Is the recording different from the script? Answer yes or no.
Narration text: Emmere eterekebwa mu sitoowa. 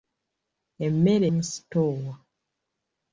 yes